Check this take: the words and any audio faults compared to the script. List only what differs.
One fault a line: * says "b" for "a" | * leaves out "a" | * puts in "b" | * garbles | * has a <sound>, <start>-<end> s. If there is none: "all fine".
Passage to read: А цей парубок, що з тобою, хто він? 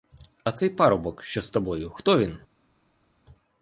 all fine